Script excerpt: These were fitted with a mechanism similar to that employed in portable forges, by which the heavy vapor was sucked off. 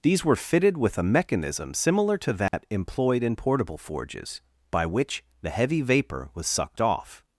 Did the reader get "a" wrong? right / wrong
right